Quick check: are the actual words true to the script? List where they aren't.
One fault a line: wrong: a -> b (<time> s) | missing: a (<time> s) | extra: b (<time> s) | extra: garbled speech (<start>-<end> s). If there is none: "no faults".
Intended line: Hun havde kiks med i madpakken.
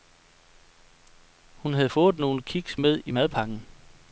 extra: fået nogle (1.9 s)